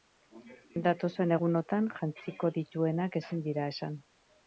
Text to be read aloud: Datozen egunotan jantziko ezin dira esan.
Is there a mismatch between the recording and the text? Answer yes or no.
yes